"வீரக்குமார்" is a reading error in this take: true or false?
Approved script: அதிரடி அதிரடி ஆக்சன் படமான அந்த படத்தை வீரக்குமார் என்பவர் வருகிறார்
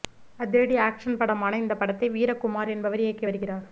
false